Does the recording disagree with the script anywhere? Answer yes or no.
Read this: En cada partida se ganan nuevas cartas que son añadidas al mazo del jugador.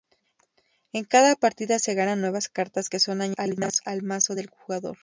no